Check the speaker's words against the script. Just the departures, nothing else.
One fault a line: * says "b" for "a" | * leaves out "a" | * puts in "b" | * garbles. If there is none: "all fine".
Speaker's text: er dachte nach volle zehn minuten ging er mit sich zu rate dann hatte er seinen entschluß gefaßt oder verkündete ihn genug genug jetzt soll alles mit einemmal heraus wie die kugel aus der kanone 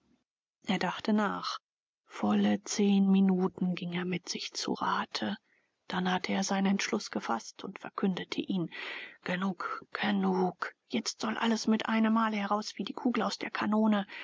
* says "und" for "oder"